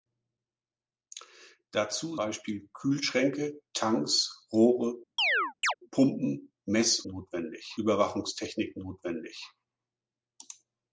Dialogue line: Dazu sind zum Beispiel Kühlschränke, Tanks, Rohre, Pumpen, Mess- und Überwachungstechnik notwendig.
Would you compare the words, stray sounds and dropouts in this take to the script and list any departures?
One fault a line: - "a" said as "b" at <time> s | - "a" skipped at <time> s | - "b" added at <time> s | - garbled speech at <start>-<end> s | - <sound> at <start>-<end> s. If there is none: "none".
- "sind zum" skipped at 2.2 s
- chirp at 5.2-5.7 s
- "und" said as "notwendig" at 7.0 s